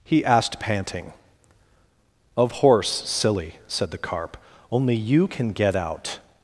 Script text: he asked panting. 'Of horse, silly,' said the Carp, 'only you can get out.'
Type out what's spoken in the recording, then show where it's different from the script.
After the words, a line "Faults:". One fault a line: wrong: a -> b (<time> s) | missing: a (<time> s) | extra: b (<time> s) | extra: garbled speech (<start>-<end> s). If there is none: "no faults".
he asked panting. 'Of horse, silly,' said the Carp, 'only you can get out.'
Faults:
no faults